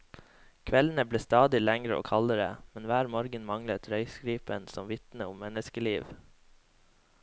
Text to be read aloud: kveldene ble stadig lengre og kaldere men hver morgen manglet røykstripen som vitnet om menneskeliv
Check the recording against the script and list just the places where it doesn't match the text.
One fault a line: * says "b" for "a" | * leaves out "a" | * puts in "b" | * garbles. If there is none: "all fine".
all fine